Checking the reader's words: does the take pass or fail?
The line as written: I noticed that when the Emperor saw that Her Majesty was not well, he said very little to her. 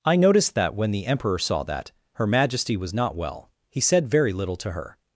pass